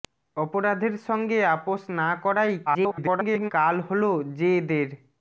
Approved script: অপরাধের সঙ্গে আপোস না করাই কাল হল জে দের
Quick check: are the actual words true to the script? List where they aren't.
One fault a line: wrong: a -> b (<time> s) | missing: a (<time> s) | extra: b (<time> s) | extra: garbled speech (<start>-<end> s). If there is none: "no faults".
extra: garbled speech (2.7-3.5 s)